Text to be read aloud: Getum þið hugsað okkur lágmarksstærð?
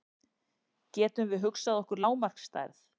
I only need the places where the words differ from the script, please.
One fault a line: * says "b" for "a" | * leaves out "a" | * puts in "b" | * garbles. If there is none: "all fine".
* says "við" for "þið"